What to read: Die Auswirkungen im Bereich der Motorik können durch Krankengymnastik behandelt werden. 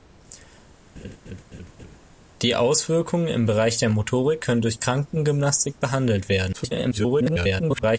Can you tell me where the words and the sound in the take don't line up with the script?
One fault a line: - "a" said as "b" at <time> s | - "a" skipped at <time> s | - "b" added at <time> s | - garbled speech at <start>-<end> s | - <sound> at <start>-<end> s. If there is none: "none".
- laugh at 1.0-2.0 s
- garbled speech at 6.5-8.0 s